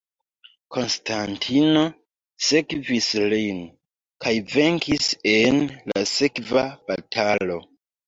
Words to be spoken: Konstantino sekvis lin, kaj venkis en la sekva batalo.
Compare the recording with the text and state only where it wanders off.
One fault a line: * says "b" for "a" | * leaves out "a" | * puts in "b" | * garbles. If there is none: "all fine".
all fine